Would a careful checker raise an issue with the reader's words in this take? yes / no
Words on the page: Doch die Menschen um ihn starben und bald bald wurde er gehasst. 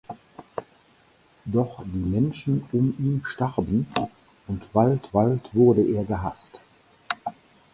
no